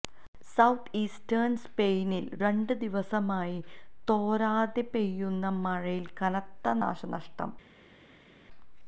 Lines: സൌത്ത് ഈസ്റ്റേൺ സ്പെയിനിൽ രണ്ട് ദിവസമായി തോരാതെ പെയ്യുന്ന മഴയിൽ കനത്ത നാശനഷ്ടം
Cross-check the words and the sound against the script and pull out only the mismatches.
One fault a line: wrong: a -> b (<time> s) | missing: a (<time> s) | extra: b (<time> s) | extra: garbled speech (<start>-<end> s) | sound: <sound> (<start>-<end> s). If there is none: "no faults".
no faults